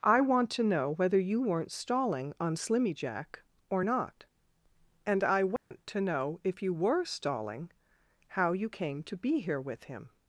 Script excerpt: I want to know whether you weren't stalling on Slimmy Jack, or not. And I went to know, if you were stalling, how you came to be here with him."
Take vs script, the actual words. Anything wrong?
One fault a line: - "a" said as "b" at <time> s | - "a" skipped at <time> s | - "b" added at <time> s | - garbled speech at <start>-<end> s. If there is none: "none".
none